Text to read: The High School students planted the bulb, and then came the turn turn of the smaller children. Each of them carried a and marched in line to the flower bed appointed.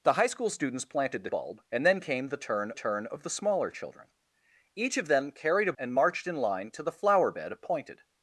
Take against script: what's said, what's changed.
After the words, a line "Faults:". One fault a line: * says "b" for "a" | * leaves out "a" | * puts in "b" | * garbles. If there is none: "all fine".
The High School students planted the bulb, and then came the turn turn of the smaller children. Each of them carried a and marched in line to the flower bed appointed.
Faults:
all fine